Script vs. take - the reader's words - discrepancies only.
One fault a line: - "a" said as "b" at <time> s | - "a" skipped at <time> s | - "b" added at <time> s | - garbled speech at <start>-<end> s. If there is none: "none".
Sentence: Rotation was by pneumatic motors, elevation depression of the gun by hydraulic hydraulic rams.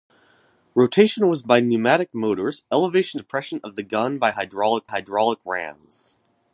none